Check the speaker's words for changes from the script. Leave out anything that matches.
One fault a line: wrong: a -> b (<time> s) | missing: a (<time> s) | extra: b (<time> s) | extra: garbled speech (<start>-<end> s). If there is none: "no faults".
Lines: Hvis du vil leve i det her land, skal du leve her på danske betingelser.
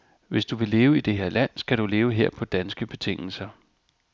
no faults